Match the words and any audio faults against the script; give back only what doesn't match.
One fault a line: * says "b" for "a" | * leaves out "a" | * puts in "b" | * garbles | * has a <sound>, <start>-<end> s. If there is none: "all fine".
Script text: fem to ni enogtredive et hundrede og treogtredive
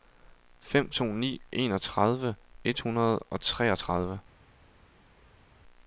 all fine